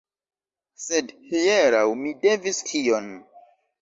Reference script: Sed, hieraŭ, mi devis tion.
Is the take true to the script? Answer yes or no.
yes